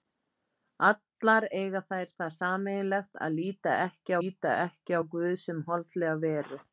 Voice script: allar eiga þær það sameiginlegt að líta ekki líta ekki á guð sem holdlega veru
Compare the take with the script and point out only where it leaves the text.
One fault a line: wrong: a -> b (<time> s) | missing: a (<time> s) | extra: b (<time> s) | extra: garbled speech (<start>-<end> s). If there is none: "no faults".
no faults